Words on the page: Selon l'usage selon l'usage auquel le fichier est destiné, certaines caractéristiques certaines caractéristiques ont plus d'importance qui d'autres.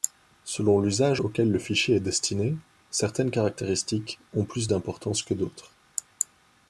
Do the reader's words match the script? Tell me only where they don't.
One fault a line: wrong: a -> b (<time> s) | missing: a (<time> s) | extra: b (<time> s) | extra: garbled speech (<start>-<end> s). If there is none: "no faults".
missing: selon l'usage (1.2 s)
missing: certaines caractéristiques (4.2 s)
wrong: qui -> que (5.2 s)